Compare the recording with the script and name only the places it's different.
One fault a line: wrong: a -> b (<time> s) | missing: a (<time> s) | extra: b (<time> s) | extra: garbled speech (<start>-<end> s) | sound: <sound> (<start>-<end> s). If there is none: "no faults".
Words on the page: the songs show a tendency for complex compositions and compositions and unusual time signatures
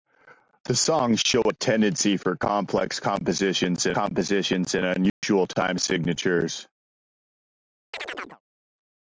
sound: dropout (5.1-5.2 s)
sound: chirp (7.9-8.4 s)